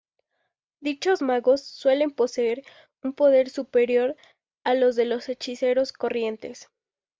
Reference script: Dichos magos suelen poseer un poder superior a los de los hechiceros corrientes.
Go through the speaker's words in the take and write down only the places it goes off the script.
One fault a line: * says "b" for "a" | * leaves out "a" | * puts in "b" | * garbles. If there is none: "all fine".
all fine